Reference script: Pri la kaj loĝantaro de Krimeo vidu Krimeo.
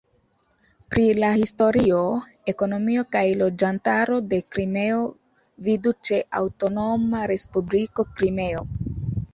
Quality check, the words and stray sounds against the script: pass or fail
fail